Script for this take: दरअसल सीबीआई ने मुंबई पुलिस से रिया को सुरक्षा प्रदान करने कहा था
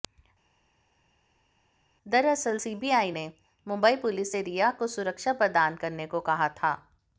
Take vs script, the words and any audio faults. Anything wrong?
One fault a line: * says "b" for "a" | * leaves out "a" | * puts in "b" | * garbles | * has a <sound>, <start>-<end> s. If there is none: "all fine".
* puts in "को"